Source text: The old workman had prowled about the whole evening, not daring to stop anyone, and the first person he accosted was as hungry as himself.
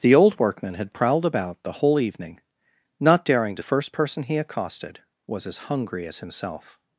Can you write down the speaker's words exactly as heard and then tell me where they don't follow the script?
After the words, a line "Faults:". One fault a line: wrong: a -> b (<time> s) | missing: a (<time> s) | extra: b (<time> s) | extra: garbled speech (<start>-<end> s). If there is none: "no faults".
The old workman had prowled about the whole evening, not daring to the first person he accosted was as hungry as himself.
Faults:
missing: stop anyone and (3.6 s)